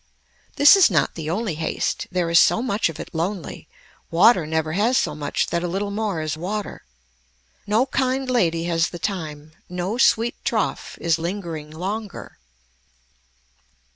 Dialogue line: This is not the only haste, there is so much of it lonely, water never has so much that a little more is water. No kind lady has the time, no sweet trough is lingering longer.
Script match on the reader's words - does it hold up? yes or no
yes